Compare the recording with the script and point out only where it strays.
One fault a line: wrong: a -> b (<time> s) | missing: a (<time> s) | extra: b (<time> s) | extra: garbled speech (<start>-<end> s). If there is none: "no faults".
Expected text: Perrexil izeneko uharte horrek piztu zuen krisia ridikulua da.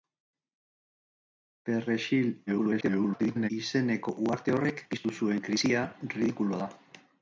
extra: garbled speech (2.5-3.5 s)